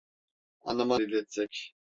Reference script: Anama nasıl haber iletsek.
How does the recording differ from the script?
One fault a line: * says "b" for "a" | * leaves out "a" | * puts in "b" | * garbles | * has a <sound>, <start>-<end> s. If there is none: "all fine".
* leaves out "nasıl haber"